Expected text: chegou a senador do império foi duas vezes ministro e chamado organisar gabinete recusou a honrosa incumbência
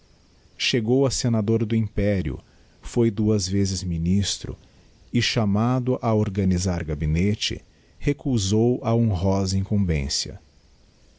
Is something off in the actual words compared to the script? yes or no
yes